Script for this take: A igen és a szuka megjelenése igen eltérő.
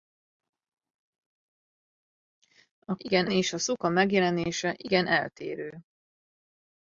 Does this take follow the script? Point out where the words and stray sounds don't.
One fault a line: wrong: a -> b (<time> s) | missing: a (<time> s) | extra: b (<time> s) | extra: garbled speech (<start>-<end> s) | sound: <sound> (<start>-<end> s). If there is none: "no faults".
no faults